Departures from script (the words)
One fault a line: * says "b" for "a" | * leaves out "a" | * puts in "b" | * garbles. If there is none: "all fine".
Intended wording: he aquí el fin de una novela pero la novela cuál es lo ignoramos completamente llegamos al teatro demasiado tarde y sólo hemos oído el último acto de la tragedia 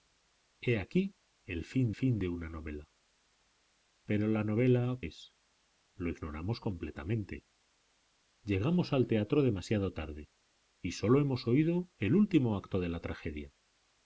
* puts in "fin"
* leaves out "cuál"